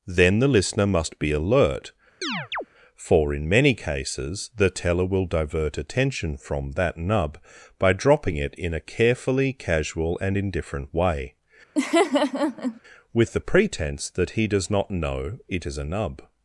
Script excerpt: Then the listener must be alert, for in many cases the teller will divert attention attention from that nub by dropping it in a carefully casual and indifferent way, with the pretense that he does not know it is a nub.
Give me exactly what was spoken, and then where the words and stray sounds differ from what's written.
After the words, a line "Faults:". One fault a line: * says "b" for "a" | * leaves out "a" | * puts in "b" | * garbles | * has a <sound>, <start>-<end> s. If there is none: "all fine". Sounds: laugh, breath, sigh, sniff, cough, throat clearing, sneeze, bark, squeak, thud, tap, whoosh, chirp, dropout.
Then the listener must be alert, for in many cases the teller will divert attention from that nub by dropping it in a carefully casual and indifferent way, with the pretense that he does not know it is a nub.
Faults:
* has a chirp, 2.2-2.7 s
* leaves out "attention"
* has a laugh, 11.8-12.8 s